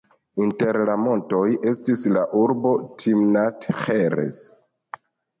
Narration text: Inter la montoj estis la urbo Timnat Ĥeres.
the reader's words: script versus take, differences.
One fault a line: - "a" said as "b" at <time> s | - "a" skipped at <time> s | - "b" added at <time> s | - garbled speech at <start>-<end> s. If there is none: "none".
none